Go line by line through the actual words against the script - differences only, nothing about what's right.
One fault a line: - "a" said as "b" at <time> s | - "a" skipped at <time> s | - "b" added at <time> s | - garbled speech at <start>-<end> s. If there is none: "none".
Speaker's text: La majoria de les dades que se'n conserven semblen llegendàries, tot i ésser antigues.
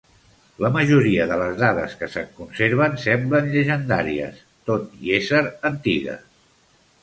none